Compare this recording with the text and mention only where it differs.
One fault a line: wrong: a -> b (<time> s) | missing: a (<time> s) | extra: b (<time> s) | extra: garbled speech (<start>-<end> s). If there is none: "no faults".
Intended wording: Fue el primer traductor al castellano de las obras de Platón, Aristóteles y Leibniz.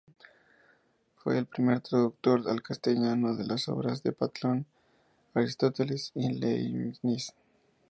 no faults